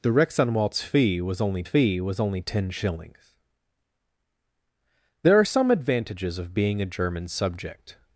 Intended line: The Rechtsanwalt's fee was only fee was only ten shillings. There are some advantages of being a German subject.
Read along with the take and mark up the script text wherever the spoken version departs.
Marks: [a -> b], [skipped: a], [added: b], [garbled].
The Rechtsanwalt's fee was only fee was only ten shillings. There are some advantages of being a German subject.